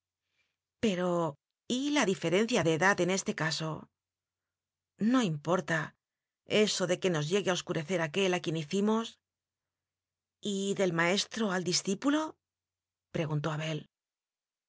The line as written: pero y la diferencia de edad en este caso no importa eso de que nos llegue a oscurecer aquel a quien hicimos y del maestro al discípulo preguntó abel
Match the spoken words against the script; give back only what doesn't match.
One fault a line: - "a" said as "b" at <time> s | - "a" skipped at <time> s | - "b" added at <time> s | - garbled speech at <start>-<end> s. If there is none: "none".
none